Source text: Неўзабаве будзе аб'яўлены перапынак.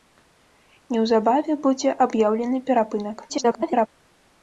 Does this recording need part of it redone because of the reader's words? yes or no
yes